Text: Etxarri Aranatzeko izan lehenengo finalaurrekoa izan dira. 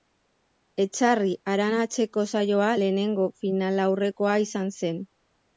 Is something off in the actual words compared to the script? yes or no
yes